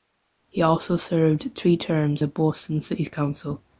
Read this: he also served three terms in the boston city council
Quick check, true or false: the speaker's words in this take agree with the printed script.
false